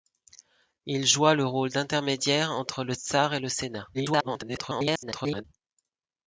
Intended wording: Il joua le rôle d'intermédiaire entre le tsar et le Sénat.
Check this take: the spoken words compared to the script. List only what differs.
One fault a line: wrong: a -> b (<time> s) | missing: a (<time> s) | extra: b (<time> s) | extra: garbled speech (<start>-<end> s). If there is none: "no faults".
extra: garbled speech (3.9-5.4 s)